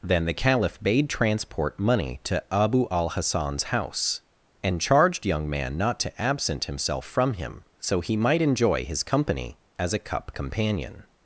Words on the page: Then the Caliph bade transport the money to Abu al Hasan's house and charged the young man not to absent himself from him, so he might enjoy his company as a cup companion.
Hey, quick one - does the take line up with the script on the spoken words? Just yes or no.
no